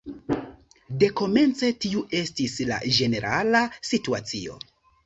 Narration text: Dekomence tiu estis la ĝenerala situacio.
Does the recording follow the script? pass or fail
pass